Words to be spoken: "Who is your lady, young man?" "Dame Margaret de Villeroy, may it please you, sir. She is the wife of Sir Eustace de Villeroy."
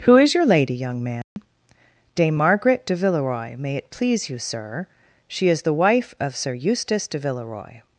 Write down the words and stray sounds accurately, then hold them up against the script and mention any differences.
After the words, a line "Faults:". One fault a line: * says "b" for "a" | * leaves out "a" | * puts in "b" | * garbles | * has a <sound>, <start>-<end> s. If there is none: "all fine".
"Who is your lady, young man?" "Dame Margaret de Villeroy, may it please you, sir. She is the wife of Sir Eustace de Villeroy."
Faults:
* has a dropout, 1.2-1.4 s